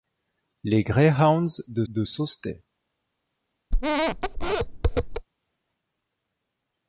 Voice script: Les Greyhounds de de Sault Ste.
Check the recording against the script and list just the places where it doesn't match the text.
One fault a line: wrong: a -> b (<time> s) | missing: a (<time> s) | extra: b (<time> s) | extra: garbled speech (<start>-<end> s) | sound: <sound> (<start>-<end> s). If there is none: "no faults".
sound: squeak (3.7-5.3 s)